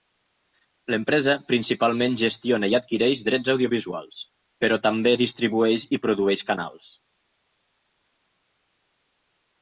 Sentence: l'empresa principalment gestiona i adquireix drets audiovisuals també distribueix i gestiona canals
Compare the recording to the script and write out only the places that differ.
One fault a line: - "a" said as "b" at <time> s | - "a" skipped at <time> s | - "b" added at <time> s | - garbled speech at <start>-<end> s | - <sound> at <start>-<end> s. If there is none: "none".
- "però" added at 4.6 s
- "gestiona" said as "produeix" at 6.1 s